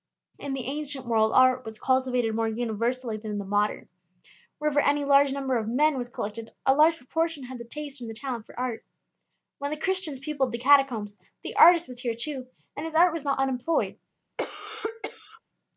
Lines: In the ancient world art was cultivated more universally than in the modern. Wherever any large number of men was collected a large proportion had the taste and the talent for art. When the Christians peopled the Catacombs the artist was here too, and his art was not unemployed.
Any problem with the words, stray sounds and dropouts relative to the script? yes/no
yes